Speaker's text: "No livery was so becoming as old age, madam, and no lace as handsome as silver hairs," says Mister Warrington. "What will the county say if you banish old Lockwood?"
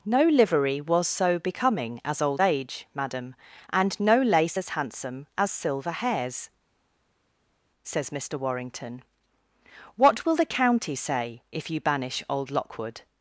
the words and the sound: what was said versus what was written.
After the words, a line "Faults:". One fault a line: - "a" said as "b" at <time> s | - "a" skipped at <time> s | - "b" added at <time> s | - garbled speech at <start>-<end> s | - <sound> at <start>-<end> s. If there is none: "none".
"No livery was so becoming as old age, madam, and no lace as handsome as silver hairs," says Mister Warrington. "What will the county say if you banish old Lockwood?"
Faults:
none